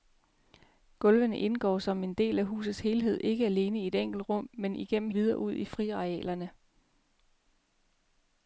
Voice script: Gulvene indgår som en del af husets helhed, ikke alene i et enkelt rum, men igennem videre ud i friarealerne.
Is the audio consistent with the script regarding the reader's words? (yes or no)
yes